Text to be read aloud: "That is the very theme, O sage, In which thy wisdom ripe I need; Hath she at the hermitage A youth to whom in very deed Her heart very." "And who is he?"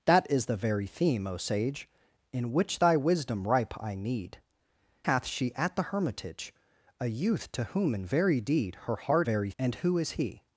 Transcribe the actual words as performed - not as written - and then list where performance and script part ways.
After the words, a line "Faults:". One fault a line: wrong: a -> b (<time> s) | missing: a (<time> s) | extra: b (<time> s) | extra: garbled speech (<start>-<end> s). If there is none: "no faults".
"That is the very theme, O sage, In which thy wisdom ripe I need; Hath she at the hermitage A youth to whom in very deed Her heart very." "And who is he?"
Faults:
no faults